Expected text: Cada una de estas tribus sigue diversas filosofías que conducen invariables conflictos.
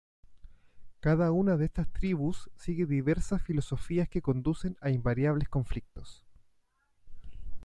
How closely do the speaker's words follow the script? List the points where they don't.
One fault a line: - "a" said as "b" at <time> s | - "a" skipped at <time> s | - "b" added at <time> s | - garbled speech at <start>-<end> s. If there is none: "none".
- "a" added at 4.8 s